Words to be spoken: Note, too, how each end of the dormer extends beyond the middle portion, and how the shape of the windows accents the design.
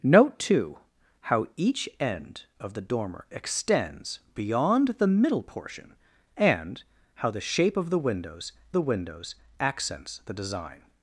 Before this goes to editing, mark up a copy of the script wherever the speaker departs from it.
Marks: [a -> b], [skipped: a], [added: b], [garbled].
Note, too, how each end of the dormer extends beyond the middle portion, and how the shape of the windows [added: the windows] accents the design.